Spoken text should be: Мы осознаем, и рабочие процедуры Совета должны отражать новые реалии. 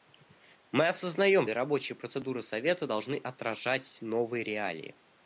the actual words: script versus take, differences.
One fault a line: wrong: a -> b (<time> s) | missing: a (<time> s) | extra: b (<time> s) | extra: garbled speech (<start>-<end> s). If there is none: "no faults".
no faults